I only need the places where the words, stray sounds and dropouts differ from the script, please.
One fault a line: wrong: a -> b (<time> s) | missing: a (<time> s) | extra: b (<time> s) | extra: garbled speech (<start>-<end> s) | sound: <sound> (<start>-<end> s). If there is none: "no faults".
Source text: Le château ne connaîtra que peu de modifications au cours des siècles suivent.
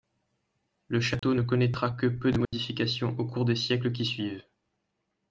sound: dropout (1.2-1.2 s)
sound: dropout (2.4-2.5 s)
extra: qui (3.9 s)